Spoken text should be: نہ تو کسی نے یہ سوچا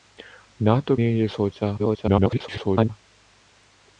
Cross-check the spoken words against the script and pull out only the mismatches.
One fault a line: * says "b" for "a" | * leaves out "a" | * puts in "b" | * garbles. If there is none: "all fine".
* leaves out "کسی"
* garbles